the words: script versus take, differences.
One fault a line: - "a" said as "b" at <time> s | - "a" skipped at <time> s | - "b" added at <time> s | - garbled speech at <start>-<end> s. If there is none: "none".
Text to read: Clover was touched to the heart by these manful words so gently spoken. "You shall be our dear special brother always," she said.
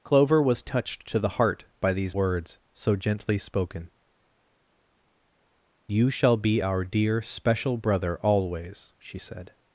- "manful" skipped at 2.2 s